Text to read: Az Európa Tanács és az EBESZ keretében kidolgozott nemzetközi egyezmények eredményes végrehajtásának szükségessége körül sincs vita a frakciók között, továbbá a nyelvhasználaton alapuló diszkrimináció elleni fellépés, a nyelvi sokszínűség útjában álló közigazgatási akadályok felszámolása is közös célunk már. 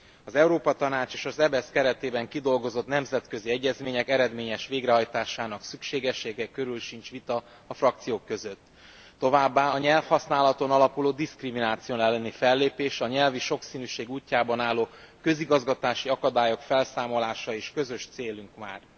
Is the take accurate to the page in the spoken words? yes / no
yes